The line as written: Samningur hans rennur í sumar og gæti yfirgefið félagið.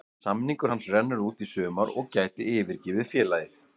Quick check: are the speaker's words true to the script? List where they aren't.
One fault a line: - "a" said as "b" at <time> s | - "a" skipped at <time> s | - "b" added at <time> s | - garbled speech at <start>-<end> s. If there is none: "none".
- "út" added at 1.3 s